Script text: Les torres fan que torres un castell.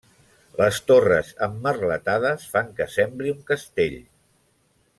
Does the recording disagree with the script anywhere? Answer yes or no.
yes